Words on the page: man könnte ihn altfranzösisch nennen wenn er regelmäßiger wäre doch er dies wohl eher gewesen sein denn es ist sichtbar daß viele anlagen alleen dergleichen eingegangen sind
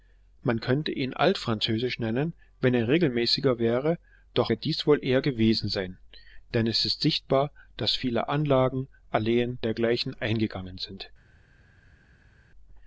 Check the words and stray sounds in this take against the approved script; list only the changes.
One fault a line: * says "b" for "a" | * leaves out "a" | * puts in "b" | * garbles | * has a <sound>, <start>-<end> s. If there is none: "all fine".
all fine